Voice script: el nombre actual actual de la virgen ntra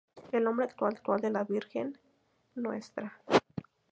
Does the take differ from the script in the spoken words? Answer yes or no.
no